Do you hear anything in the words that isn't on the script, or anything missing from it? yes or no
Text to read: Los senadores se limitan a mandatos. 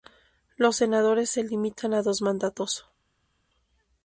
yes